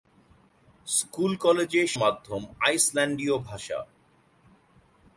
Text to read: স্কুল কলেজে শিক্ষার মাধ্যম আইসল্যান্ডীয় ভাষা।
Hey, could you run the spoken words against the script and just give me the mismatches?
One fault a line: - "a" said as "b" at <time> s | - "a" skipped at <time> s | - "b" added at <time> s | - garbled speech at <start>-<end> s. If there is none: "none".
- "শিক্ষার" skipped at 1.8 s